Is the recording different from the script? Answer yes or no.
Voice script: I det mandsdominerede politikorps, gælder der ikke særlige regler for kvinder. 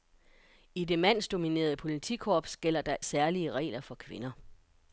yes